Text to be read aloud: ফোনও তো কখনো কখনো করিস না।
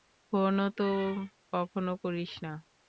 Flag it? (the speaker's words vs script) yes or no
yes